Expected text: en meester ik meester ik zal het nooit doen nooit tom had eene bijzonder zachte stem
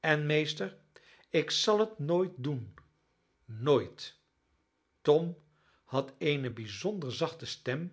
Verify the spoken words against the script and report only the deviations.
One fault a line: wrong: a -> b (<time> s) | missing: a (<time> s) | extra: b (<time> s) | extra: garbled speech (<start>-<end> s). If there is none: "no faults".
missing: meester ik (1.5 s)